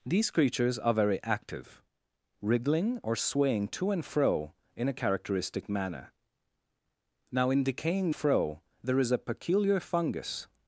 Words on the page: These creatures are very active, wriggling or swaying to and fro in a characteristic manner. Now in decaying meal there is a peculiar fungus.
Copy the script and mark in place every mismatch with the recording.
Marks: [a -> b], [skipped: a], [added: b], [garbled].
These creatures are very active, wriggling or swaying to and fro in a characteristic manner. Now in decaying [meal -> fro] there is a peculiar fungus.